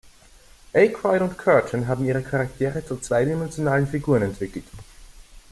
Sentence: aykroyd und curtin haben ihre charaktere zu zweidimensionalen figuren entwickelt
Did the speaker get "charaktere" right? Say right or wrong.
right